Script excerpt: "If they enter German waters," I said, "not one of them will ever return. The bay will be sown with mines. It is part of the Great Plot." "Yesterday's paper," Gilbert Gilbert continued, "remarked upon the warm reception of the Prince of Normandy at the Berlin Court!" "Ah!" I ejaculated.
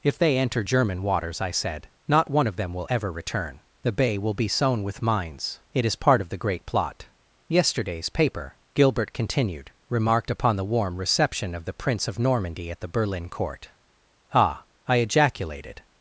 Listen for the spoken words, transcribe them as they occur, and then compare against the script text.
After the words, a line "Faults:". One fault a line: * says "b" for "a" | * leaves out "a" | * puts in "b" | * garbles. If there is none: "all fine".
"If they enter German waters," I said, "not one of them will ever return. The bay will be sown with mines. It is part of the Great Plot." "Yesterday's paper," Gilbert continued, "remarked upon the warm reception of the Prince of Normandy at the Berlin Court!" "Ah!" I ejaculated.
Faults:
* leaves out "Gilbert"